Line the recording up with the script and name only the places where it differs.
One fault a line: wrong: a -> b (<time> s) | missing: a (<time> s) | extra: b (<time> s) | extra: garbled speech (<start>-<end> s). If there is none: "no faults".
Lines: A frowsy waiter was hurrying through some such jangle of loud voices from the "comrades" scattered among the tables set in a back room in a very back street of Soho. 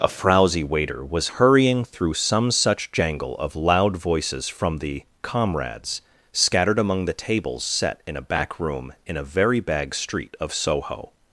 wrong: back -> bag (9.6 s)